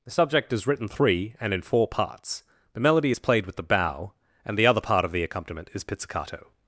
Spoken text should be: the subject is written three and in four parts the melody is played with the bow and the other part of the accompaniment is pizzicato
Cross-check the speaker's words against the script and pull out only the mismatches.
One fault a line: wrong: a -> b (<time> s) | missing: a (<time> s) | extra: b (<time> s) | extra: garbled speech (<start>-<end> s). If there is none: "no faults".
no faults